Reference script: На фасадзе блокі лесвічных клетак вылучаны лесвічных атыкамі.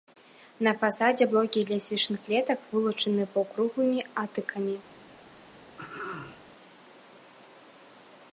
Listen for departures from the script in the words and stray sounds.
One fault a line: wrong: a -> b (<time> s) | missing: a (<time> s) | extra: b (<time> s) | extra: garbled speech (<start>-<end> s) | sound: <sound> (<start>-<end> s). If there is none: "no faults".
wrong: лесвічных -> паўкруглымі (3.4 s)
sound: throat clearing (5.8-6.4 s)